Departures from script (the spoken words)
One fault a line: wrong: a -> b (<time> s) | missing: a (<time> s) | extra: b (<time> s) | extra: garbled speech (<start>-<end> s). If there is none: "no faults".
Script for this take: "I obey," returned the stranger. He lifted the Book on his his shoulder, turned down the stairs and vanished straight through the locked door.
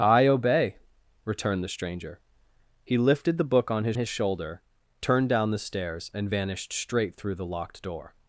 no faults